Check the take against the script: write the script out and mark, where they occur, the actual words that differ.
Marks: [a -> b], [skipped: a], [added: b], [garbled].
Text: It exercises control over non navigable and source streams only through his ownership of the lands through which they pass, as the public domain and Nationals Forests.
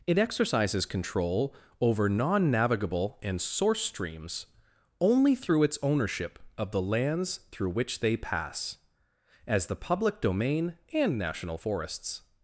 It exercises control over non navigable and source streams only through [his -> its] ownership of the lands through which they pass, as the public domain and [Nationals -> National] Forests.